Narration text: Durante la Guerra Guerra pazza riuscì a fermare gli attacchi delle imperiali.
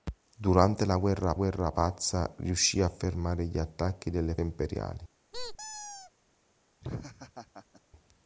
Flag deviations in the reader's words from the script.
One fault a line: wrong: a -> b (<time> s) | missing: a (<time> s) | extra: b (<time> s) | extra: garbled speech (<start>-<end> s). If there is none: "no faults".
no faults